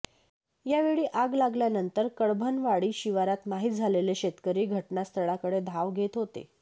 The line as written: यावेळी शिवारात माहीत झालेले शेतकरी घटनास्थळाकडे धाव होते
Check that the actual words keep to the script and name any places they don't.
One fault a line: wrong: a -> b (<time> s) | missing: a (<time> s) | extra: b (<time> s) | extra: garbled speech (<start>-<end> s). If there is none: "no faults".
extra: आग लागल्यानंतर कडभनवाडी (1.1 s)
extra: घेत (5.9 s)